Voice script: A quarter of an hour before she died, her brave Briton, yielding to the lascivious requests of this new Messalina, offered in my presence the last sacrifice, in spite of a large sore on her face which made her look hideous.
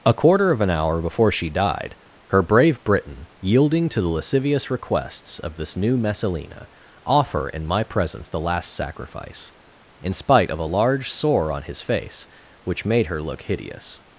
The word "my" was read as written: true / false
true